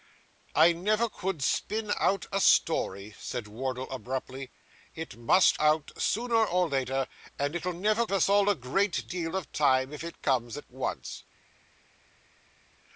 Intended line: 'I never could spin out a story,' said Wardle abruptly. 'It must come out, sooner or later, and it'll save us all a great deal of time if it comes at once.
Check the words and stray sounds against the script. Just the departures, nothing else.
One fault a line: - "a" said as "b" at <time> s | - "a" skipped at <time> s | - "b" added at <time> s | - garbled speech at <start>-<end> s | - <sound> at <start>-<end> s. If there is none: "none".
- "come" skipped at 5.6 s
- "save" said as "never" at 7.7 s